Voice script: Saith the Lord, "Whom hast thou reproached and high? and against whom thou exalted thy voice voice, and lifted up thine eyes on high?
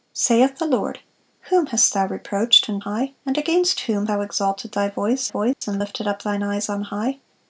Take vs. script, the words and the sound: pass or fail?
fail